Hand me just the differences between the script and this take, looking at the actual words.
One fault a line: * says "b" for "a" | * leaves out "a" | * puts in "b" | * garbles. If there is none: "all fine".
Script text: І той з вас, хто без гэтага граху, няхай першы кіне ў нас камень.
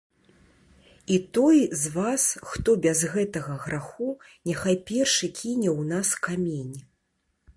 all fine